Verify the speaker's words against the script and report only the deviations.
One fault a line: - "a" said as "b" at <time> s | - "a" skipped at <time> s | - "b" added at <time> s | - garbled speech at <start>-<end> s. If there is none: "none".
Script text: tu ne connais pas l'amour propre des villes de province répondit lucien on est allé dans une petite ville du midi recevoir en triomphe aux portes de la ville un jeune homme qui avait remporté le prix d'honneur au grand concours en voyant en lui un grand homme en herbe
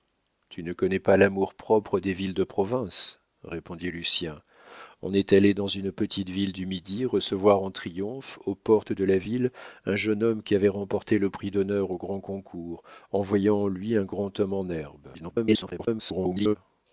- garbled speech at 15.1-16.6 s